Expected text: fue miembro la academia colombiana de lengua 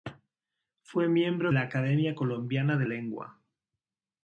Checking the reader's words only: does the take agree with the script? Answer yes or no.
yes